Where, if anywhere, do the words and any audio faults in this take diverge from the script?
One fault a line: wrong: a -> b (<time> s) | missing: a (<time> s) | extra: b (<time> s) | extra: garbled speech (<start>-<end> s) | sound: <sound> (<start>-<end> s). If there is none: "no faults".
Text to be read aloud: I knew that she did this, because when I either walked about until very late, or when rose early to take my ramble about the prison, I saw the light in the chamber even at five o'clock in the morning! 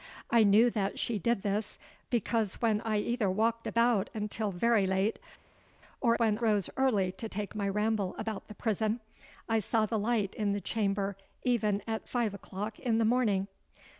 no faults